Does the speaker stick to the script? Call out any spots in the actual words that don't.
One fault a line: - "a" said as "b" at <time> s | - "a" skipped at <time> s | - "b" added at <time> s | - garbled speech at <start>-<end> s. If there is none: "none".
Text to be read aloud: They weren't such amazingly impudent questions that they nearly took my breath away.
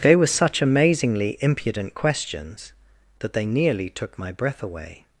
- "weren't" said as "were" at 0.1 s